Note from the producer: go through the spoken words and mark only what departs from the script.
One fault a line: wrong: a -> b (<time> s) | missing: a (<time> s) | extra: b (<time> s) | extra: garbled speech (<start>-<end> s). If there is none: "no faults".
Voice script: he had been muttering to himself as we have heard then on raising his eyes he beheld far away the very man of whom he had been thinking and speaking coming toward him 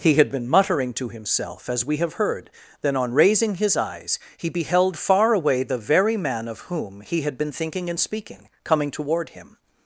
no faults